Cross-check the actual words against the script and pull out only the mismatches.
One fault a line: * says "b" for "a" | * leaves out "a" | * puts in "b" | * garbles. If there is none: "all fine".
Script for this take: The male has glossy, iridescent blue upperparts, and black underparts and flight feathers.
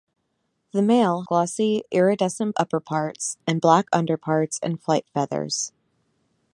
* leaves out "has"
* leaves out "blue"